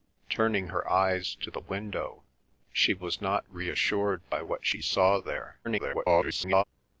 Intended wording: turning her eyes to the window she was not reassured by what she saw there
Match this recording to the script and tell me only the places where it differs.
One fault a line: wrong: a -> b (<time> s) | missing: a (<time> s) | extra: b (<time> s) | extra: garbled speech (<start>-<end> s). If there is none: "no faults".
extra: garbled speech (5.6-6.6 s)